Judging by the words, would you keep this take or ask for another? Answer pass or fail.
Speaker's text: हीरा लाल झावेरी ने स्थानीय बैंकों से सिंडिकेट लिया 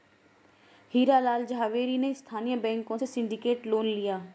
fail